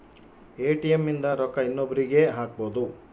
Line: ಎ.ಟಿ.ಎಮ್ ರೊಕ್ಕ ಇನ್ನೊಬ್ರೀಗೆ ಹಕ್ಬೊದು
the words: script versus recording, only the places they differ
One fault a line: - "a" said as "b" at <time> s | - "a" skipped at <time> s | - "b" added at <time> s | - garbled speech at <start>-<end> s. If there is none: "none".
- "ಇಂದ" added at 1.1 s